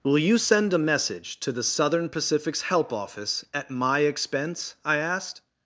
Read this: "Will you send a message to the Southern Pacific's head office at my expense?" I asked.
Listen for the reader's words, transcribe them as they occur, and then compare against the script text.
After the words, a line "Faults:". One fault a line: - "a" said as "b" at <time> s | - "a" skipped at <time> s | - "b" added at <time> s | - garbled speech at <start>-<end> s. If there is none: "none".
"Will you send a message to the Southern Pacific's help office at my expense?" I asked.
Faults:
- "head" said as "help" at 2.6 s